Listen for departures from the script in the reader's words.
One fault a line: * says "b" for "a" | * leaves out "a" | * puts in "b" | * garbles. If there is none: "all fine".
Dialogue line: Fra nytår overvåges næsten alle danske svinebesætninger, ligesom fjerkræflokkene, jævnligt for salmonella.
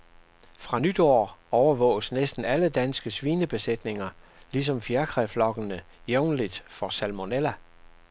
all fine